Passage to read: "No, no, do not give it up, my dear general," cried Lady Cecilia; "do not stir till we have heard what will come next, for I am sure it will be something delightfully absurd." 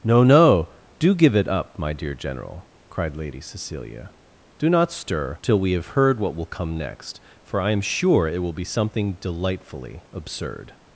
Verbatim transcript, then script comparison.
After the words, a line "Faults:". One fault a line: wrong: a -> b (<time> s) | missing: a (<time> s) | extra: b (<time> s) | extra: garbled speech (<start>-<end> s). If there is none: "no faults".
"No, no, do give it up, my dear general," cried Lady Cecilia; "do not stir till we have heard what will come next, for I am sure it will be something delightfully absurd."
Faults:
missing: not (1.1 s)